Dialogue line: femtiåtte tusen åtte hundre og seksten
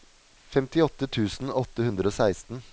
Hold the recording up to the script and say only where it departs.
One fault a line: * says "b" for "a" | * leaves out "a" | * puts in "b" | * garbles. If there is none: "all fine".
all fine